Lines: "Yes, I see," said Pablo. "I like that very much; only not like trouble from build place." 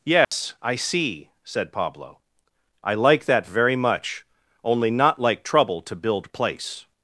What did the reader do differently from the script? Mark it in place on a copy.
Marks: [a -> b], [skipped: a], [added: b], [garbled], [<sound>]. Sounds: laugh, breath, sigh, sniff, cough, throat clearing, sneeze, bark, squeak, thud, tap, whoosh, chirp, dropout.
"Yes, [dropout] I see," said Pablo. "I like that very much; only not like trouble [from -> to] build place."